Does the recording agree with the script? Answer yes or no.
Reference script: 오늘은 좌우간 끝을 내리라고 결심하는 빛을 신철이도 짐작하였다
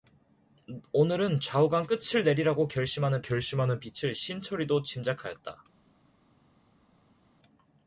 no